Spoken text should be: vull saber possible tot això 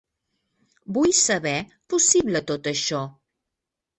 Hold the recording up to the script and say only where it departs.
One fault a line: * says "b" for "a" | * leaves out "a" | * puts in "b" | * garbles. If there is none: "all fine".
all fine